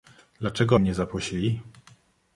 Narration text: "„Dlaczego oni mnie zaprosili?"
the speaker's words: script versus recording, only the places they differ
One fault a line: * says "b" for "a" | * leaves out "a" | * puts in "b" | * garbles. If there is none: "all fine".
* leaves out "oni"